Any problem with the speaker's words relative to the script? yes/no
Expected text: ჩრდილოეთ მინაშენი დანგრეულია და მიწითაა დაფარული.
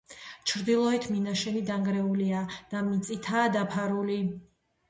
no